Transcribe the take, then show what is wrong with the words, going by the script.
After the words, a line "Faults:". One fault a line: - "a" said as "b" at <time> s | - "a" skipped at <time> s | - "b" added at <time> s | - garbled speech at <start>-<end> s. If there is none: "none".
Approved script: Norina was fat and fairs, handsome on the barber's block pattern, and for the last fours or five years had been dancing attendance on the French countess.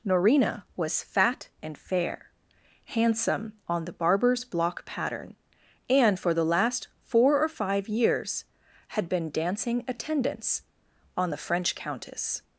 Norina was fat and fair, handsome on the barber's block pattern, and for the last four or five years had been dancing attendance on the French countess.
Faults:
- "fairs" said as "fair" at 1.7 s
- "fours" said as "four" at 7.0 s